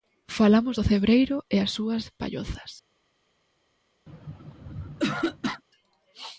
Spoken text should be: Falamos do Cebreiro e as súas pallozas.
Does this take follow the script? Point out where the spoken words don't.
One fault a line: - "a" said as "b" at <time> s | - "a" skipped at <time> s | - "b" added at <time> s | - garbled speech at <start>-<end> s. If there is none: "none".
none